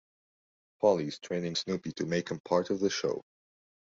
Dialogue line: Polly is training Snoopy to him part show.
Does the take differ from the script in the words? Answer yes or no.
yes